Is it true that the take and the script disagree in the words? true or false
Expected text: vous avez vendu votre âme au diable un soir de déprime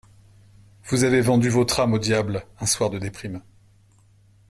false